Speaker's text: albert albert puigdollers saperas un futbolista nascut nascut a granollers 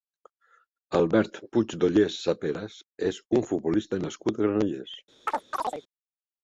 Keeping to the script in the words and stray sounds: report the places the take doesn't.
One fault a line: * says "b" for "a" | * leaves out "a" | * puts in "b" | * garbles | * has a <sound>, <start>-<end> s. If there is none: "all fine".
* leaves out "albert"
* puts in "és"
* leaves out "nascut"
* has a chirp, 5.3-5.8 s